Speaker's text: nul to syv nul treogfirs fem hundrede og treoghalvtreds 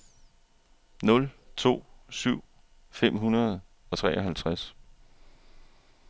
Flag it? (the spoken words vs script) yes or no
yes